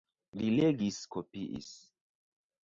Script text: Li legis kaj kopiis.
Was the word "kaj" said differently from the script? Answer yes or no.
yes